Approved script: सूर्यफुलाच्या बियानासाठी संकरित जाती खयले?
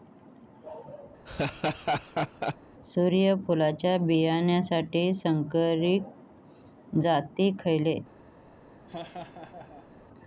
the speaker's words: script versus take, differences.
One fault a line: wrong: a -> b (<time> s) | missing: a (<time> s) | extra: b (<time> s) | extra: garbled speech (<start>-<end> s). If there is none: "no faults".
no faults